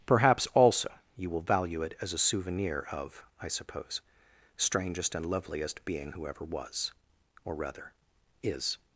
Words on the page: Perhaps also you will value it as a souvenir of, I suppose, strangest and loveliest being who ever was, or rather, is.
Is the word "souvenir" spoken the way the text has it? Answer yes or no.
yes